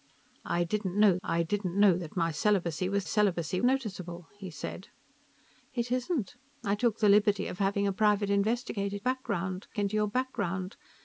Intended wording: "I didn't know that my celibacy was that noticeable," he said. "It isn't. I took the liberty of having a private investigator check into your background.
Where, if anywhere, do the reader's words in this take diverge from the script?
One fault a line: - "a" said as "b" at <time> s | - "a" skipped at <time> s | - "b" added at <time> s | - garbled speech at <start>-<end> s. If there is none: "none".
- "I didn't know" added at 1.3 s
- "that" said as "celibacy" at 3.0 s
- "check" said as "background" at 9.0 s